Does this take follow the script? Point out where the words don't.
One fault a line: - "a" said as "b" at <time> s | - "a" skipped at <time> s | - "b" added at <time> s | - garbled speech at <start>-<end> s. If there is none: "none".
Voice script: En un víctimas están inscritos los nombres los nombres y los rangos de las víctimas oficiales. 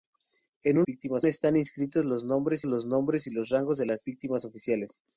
none